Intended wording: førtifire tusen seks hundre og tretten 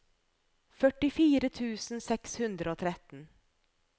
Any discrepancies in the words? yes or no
no